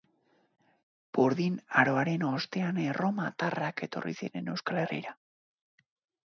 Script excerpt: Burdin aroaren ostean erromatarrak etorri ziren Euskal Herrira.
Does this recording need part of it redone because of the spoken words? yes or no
no